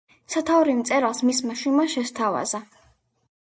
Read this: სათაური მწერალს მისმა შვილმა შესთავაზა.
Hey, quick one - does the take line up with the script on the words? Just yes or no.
yes